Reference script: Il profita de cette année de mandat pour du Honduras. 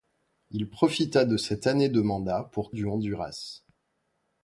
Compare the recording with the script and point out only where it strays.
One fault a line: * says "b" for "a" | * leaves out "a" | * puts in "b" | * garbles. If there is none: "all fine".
all fine